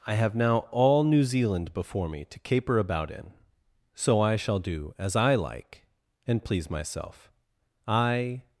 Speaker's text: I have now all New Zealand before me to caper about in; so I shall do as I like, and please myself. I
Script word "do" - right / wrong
right